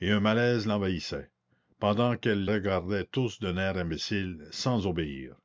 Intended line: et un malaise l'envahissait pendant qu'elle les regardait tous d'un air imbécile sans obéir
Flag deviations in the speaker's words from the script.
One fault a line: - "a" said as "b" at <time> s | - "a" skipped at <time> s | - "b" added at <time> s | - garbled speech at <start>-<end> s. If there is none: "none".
- "les" skipped at 2.5 s